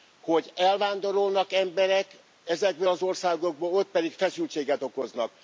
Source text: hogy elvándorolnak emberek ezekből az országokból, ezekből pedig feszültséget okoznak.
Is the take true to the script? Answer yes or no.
no